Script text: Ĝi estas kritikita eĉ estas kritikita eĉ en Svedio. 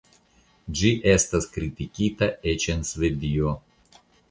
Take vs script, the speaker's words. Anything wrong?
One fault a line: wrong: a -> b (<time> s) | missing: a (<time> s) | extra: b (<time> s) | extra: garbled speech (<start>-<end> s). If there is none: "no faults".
missing: estas kritikita eĉ (2.7 s)